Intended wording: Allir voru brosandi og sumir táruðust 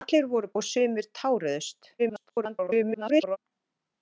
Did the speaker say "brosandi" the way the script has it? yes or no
no